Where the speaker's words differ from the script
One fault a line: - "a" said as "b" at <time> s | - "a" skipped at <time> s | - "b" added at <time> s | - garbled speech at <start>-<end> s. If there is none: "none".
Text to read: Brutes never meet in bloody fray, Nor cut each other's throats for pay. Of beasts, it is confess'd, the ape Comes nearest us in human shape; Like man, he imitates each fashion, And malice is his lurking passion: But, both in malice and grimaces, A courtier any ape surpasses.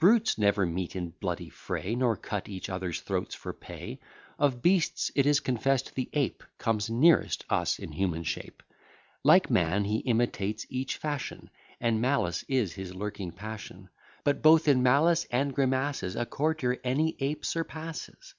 none